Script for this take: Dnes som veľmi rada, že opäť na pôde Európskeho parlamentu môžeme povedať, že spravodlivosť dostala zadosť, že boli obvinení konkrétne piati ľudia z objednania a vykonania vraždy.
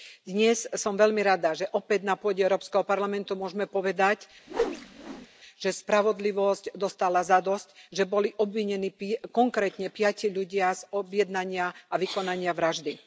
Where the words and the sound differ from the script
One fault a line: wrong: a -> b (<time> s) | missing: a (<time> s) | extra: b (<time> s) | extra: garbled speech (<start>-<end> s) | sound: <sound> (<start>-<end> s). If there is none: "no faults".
sound: whoosh (4.5-5.3 s)